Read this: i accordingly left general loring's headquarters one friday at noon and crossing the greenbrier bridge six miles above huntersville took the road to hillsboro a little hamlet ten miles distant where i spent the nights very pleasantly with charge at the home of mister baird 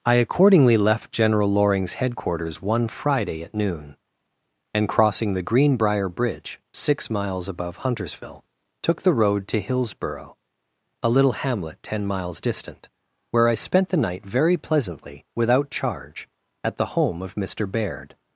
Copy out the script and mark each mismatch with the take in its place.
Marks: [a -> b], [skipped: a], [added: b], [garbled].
i accordingly left general loring's headquarters one friday at noon and crossing the greenbrier bridge six miles above huntersville took the road to hillsboro a little hamlet ten miles distant where i spent the [nights -> night] very pleasantly [with -> without] charge at the home of mister baird